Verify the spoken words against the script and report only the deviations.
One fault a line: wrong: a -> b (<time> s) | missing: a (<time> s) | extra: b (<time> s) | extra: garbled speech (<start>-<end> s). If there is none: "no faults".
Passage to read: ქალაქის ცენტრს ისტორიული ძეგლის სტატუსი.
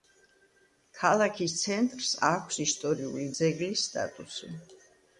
extra: აქვს (2.3 s)